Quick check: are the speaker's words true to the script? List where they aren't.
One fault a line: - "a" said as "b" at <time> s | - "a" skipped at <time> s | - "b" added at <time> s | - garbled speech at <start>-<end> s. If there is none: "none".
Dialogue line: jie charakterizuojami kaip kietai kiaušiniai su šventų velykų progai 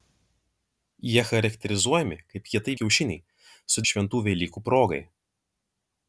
none